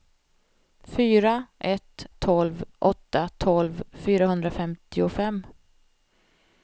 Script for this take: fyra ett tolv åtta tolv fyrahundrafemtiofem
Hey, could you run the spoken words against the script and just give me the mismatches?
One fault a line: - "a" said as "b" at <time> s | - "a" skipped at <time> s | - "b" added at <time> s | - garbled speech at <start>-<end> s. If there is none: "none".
none